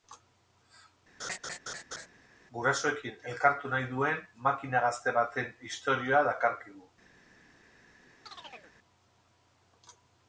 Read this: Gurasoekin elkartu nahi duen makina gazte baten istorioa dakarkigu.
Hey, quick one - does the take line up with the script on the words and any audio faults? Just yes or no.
no